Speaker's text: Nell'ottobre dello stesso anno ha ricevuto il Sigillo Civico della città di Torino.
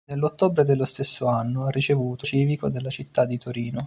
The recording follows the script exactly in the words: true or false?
false